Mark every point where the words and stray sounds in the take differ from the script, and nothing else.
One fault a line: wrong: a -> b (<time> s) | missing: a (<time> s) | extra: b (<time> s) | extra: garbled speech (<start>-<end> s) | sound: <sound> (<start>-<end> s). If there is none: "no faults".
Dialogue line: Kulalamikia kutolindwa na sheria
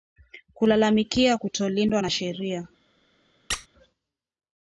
sound: squeak (3.5-3.7 s)